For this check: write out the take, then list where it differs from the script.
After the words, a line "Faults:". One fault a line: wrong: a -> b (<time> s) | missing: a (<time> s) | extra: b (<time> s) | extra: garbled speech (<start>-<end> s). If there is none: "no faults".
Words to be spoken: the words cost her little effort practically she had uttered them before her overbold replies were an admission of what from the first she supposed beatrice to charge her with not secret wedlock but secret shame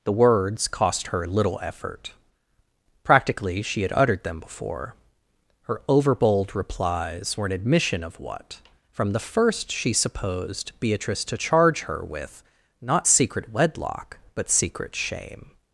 the words cost her little effort practically she had uttered them before her overbold replies were an admission of what from the first she supposed beatrice to charge her with not secret wedlock but secret shame
Faults:
no faults